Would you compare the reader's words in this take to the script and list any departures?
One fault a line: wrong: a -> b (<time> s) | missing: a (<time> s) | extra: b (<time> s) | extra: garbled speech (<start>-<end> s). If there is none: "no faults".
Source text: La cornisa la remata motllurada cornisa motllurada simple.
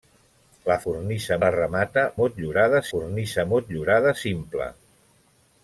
no faults